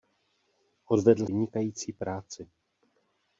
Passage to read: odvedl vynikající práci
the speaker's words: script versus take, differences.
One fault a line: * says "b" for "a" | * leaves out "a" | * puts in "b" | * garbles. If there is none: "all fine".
all fine